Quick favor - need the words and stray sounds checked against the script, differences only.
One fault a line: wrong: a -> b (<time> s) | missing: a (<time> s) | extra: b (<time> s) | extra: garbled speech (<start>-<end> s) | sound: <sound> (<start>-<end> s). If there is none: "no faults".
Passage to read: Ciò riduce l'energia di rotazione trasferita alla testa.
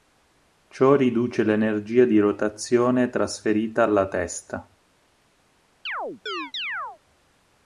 sound: chirp (5.9-7.0 s)